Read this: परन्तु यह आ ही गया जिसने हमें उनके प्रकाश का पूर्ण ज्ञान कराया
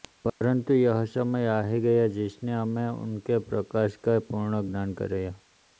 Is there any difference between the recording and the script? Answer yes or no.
yes